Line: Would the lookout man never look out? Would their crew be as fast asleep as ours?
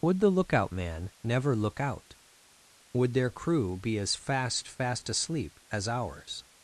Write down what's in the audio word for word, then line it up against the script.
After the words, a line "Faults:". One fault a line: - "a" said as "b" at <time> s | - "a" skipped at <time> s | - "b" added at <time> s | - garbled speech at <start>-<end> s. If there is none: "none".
Would the lookout man never look out? Would their crew be as fast fast asleep as ours?
Faults:
- "fast" added at 4.7 s